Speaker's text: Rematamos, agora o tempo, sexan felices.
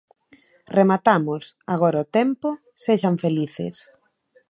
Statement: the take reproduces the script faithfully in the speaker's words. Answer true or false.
true